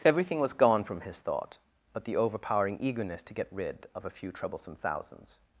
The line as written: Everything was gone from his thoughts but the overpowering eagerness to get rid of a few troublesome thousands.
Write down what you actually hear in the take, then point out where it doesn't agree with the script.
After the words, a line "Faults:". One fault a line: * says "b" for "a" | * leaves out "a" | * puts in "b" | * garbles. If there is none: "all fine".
Everything was gone from his thought but the overpowering eagerness to get rid of a few troublesome thousands.
Faults:
* says "thought" for "thoughts"